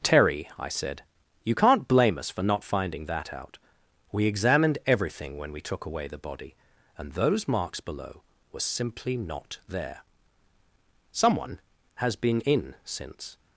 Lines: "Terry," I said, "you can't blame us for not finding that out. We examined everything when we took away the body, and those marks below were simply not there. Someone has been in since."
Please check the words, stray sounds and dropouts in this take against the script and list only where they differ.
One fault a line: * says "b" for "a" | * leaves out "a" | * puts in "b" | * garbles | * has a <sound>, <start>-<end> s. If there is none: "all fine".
all fine